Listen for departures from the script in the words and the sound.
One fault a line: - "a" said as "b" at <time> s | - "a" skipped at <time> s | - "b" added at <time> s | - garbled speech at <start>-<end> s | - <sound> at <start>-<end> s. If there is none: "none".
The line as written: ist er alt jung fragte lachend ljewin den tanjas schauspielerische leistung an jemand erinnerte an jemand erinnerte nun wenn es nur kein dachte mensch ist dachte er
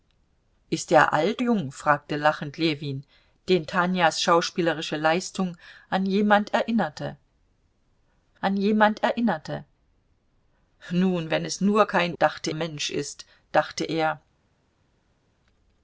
none